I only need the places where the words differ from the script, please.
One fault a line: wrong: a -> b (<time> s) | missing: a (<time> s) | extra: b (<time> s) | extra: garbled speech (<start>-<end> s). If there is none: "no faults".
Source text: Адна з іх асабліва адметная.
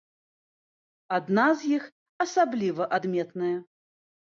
no faults